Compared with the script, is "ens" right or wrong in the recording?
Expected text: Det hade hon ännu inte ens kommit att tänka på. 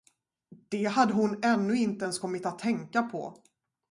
right